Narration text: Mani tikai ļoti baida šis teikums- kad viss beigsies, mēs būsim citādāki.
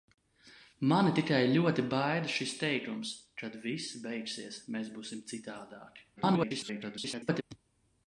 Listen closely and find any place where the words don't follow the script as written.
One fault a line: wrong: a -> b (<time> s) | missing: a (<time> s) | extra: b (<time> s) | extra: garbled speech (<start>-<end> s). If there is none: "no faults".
extra: garbled speech (6.2-7.4 s)